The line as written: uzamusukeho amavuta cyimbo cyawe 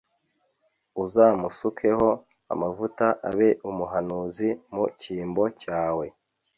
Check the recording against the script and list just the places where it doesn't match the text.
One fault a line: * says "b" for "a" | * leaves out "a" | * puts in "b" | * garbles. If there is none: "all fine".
* puts in "abe umuhanuzi mu"